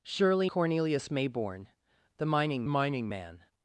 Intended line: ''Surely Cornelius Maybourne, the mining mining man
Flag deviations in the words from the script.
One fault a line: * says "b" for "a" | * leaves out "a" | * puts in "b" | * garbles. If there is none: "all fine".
all fine